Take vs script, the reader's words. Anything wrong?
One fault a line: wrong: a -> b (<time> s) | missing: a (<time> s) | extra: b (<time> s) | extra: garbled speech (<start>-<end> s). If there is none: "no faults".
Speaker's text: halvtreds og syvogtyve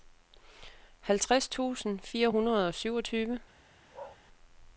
extra: tusind fire hundrede (1.5 s)